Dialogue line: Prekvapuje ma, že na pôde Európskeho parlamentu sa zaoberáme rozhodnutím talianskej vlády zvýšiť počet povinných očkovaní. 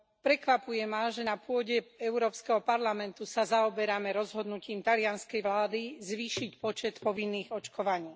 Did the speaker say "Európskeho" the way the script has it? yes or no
yes